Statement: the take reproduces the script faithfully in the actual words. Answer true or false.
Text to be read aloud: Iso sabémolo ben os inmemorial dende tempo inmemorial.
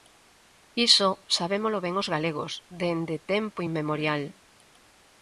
false